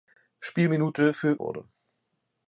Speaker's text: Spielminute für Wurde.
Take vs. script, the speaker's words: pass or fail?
pass